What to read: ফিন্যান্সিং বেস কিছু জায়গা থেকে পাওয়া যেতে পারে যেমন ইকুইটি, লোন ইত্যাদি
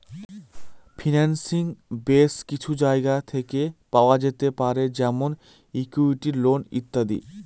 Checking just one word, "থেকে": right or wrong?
right